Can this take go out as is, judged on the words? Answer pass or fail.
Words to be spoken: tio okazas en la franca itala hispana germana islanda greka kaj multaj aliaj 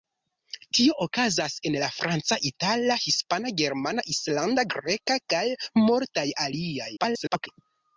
fail